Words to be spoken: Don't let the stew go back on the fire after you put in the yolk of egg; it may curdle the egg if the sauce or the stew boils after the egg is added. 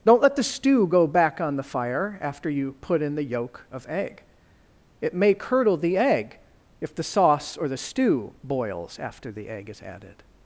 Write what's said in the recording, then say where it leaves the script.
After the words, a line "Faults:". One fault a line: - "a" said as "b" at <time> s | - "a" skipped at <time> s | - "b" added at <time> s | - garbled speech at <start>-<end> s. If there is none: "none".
Don't let the stew go back on the fire after you put in the yolk of egg; it may curdle the egg if the sauce or the stew boils after the egg is added.
Faults:
none